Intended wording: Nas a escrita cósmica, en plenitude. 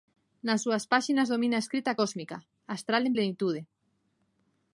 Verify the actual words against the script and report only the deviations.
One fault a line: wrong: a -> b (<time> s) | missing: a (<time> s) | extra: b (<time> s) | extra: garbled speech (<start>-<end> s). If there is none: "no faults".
extra: súas páxinas domina (0.6 s)
extra: astral (2.7 s)